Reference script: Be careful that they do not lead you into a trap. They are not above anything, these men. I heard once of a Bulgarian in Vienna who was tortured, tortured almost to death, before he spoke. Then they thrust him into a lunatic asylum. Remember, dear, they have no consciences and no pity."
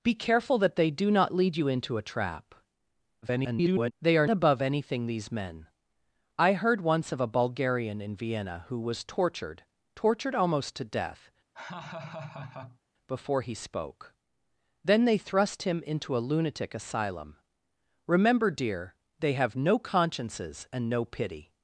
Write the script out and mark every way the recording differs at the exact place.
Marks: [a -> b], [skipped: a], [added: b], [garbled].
Be careful that they do not lead you into a trap. [garbled] They are [skipped: not] above anything, these men. I heard once of a Bulgarian in Vienna who was tortured, tortured almost to death, before he spoke. Then they thrust him into a lunatic asylum. Remember, dear, they have no consciences and no pity."